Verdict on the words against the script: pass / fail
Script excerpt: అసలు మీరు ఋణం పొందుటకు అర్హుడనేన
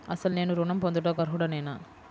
fail